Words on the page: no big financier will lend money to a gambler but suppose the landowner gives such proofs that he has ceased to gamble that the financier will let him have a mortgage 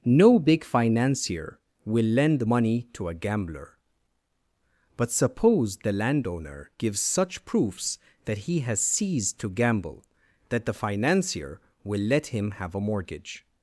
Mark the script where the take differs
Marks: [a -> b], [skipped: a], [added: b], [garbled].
no big financier will lend money to a gambler but suppose the landowner gives such proofs that he has ceased to gamble that the financier will let him have a mortgage